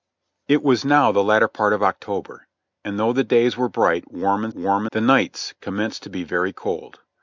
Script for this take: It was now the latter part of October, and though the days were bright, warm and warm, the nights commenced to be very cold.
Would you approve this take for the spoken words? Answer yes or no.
yes